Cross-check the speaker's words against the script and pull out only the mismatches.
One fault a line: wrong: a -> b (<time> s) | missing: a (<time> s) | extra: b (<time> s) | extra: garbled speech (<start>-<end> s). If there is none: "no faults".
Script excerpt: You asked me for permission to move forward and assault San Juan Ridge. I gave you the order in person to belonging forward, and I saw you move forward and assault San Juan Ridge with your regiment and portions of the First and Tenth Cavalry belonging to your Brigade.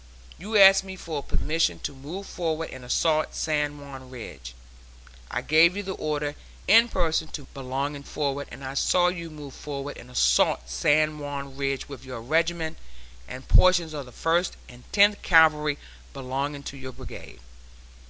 no faults